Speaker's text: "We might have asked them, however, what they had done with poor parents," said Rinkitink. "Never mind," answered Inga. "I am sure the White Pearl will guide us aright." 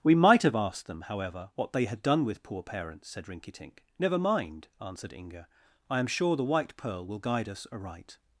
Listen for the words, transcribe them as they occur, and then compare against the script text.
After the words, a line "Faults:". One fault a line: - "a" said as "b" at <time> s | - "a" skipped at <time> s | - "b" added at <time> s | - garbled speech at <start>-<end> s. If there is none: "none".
"We might have asked them, however, what they had done with poor parents," said Rinkitink. "Never mind," answered Inga. "I am sure the White Pearl will guide us aright."
Faults:
none